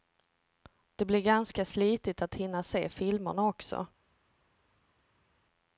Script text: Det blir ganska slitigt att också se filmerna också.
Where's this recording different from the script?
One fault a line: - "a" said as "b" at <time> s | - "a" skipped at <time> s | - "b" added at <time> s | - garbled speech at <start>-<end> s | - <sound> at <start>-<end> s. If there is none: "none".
- "också" said as "hinna" at 2.4 s